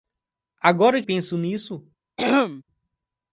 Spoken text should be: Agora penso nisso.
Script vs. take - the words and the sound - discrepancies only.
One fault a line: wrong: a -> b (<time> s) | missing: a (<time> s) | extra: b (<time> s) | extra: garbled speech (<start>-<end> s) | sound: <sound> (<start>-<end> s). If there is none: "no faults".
sound: throat clearing (2.2-2.6 s)